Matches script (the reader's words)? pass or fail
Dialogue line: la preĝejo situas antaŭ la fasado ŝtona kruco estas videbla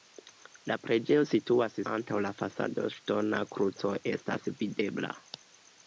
pass